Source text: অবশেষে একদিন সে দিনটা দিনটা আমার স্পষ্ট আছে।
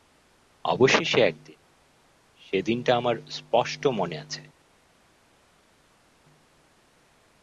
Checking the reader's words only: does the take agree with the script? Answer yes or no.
no